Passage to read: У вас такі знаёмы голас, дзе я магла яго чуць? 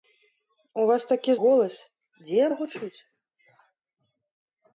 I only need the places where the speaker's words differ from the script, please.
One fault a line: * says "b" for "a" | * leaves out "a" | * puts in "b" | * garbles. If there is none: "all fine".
* leaves out "знаёмы"
* leaves out "магла"